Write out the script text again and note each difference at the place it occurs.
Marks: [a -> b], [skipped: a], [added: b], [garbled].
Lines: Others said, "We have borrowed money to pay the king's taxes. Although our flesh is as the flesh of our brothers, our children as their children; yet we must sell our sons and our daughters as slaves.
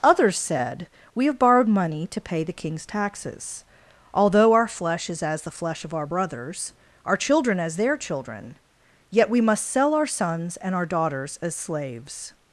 Others said, "We have borrowed money to pay the king's taxes. Although our flesh is as the flesh of our brothers, our children as their children; yet we must sell our sons and our daughters as slaves.